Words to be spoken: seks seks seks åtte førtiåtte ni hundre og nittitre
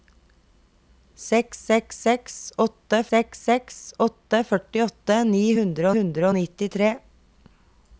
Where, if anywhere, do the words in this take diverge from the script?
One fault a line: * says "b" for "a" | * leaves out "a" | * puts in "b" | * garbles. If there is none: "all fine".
* puts in "seks seks åtte"
* puts in "hundre"